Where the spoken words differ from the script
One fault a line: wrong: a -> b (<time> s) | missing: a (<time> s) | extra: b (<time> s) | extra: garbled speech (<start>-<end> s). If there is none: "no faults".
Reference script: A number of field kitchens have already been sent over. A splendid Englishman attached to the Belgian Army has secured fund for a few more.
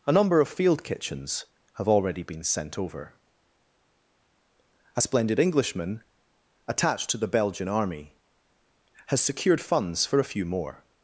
wrong: fund -> funds (9.6 s)